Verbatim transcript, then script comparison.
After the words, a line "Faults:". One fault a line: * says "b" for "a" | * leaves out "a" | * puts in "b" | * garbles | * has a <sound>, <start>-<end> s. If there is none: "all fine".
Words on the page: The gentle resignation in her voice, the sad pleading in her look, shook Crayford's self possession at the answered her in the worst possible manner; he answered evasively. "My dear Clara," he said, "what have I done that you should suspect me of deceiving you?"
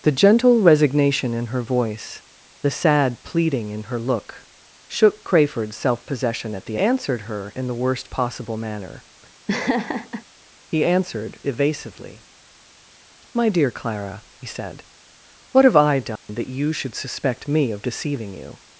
The gentle resignation in her voice, the sad pleading in her look, shook Crayford's self possession at the answered her in the worst possible manner; he answered evasively. "My dear Clara," he said, "what have I done that you should suspect me of deceiving you?"
Faults:
* has a laugh, 9.5-10.2 s
* has a dropout, 16.2-16.3 s